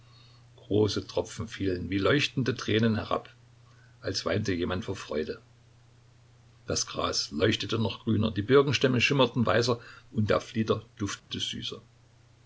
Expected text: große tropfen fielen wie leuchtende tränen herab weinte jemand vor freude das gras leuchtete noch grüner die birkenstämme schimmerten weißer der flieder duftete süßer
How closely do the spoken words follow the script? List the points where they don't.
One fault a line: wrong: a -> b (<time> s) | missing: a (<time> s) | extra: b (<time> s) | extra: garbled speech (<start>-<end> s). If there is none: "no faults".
extra: als (4.0 s)
extra: und (10.1 s)